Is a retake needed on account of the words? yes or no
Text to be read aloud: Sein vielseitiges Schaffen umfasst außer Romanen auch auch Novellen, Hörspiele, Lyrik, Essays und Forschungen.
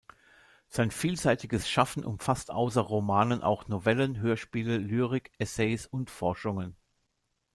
yes